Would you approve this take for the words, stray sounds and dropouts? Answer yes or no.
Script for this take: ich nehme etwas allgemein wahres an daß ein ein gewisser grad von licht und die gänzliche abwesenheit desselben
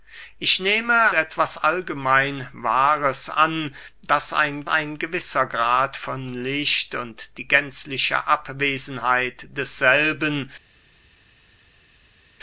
yes